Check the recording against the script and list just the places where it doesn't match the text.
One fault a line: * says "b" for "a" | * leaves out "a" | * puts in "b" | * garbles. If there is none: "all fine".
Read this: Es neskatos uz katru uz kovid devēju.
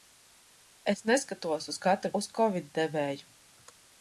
all fine